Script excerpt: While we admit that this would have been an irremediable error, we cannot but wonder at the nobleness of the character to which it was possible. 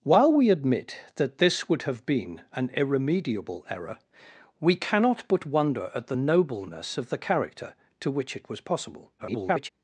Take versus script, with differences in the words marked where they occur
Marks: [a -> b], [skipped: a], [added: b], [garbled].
While we admit that this would have been an irremediable error, we cannot but wonder at the nobleness of the character to which it was possible. [garbled]